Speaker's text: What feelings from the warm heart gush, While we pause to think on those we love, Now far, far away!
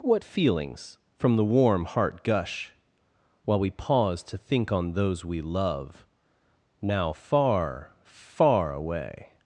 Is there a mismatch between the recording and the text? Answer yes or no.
no